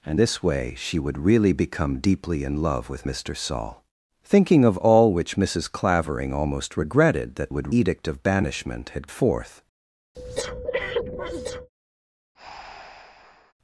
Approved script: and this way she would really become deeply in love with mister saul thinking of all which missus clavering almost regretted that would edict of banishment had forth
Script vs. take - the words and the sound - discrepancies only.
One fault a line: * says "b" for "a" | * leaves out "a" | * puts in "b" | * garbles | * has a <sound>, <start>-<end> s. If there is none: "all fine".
* has a breath, 10.1-11.7 s
* has a breath, 12.3-13.5 s